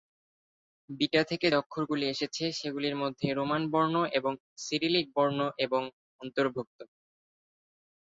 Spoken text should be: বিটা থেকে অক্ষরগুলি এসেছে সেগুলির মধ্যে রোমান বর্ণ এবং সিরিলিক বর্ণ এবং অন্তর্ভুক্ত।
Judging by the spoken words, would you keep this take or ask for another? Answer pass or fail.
pass